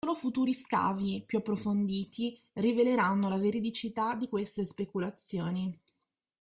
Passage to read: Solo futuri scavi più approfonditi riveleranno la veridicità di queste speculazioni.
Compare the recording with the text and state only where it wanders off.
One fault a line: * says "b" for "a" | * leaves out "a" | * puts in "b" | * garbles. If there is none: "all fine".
all fine